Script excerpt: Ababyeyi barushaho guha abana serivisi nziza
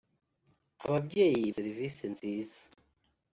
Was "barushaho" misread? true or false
true